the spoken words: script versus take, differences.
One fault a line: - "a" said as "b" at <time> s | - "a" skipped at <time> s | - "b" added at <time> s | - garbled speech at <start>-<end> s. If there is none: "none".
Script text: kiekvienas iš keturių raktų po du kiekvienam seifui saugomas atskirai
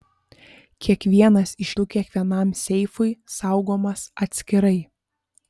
- "keturių raktų po" skipped at 1.7 s